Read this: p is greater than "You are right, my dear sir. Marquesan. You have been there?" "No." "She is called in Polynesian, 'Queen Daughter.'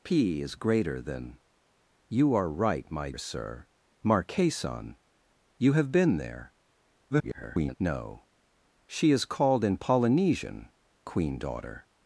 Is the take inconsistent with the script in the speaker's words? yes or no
yes